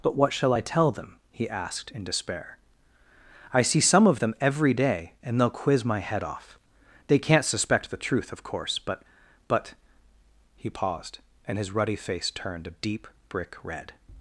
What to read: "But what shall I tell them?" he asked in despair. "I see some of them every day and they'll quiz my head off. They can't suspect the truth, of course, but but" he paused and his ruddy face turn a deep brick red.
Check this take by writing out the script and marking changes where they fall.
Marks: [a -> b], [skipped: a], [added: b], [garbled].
"But what shall I tell them?" he asked in despair. "I see some of them every day and they'll quiz my head off. They can't suspect the truth, of course, but but" he paused and his ruddy face [turn -> turned] a deep brick red.